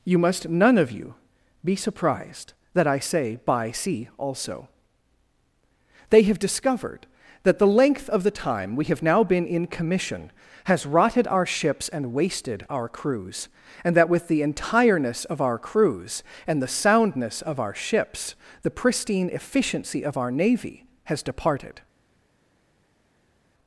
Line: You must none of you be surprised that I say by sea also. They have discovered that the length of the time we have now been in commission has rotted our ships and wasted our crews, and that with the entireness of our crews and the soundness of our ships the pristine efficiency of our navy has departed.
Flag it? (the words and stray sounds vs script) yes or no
no